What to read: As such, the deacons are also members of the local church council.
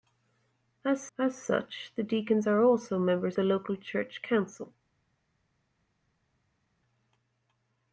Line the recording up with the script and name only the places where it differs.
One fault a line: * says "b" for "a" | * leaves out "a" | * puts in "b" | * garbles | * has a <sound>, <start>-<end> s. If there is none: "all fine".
* puts in "as"
* leaves out "of"